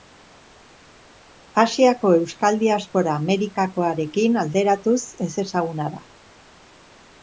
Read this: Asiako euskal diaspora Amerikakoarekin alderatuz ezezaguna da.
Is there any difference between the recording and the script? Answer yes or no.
no